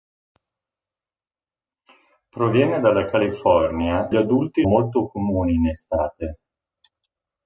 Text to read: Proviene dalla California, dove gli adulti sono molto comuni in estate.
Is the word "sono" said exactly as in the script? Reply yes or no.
no